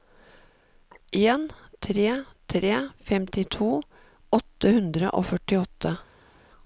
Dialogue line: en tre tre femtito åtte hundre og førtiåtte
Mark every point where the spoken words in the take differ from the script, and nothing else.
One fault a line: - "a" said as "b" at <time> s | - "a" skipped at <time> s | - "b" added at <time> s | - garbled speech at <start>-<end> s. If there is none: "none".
none